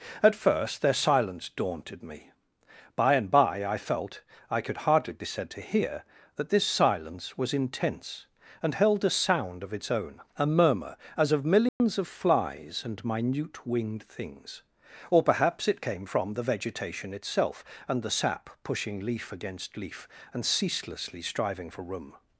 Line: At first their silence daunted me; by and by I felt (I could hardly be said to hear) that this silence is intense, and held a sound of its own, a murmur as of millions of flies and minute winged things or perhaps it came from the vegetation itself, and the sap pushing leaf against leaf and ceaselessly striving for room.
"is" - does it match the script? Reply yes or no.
no